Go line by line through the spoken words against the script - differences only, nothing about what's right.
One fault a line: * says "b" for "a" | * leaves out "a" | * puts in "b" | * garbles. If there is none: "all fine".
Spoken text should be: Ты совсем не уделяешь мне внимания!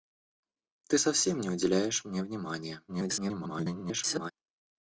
* garbles